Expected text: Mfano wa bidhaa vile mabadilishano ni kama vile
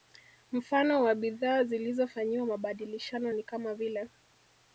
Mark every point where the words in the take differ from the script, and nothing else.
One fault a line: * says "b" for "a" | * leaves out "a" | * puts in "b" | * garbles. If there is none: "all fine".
* says "zilizofanyiwa" for "vile"